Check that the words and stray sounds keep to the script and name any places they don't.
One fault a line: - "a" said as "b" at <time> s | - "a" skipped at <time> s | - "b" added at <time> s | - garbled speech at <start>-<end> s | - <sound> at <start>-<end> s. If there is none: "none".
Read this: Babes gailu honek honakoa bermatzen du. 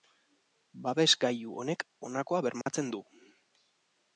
- dropout at 2.6-2.7 s